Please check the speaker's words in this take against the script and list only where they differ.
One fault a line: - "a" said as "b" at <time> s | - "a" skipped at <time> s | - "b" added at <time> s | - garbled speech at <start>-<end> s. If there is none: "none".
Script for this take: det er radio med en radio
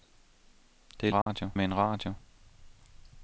none